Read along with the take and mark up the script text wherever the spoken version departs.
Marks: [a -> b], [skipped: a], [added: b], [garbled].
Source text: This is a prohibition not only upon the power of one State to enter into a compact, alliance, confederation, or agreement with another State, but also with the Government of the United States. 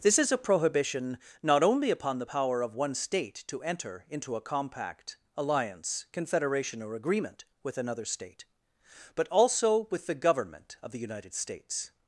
This is a prohibition not only upon the power of one State to enter into a compact, alliance, confederation, or agreement with another State, but also with the Government of the United States.